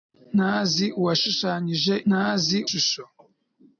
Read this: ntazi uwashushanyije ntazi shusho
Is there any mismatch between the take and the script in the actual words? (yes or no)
no